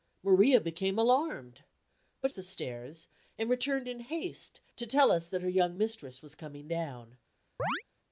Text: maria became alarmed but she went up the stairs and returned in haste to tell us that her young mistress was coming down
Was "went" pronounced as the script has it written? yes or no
no